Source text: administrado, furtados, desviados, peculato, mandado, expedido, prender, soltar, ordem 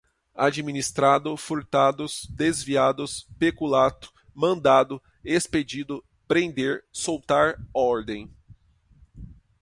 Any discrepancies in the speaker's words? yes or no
no